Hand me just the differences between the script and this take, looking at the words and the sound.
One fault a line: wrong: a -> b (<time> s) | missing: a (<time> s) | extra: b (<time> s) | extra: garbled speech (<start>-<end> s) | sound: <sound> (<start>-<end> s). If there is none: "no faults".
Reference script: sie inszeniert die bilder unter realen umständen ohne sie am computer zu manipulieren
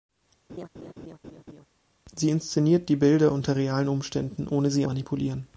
sound: laugh (0.5-1.7 s)
missing: am computer zu (4.8 s)